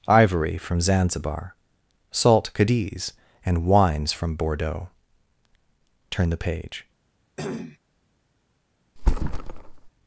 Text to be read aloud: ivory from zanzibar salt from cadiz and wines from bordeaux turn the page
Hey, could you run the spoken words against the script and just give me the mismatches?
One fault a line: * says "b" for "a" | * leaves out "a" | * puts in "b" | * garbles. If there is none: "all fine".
* leaves out "from"